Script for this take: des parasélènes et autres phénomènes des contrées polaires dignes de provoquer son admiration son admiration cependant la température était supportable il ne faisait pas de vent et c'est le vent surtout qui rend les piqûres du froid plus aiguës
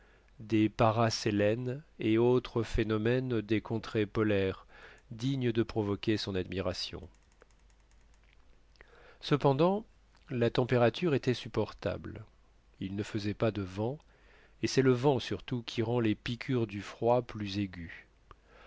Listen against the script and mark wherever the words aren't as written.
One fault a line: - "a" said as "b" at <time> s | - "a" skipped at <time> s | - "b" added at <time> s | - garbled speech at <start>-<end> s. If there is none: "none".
- "son admiration" skipped at 7.1 s